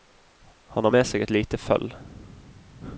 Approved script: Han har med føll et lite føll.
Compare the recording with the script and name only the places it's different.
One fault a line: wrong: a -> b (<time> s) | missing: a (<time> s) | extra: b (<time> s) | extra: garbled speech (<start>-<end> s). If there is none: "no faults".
wrong: føll -> seg (1.1 s)